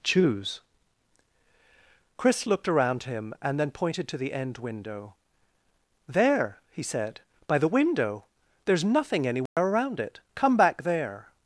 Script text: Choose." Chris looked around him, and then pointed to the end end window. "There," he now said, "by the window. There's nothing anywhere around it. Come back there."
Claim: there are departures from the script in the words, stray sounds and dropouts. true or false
true